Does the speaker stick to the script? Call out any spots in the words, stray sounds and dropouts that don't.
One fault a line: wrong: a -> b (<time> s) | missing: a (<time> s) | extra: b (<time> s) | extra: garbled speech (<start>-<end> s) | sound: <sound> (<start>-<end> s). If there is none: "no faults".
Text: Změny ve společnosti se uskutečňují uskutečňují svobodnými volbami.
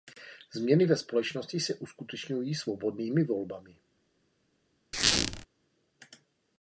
missing: uskutečňují (2.5 s)
sound: squeak (4.9-5.5 s)